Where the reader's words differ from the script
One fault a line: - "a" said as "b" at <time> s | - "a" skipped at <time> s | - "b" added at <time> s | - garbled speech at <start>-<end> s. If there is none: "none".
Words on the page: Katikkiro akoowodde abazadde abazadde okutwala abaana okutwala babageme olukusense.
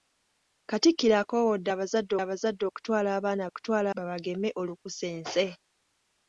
none